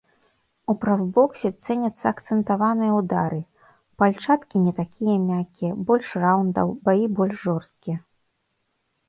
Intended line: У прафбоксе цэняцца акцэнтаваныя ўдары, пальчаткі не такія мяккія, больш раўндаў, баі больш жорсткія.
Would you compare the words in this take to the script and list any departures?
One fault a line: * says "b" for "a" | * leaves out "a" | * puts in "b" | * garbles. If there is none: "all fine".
all fine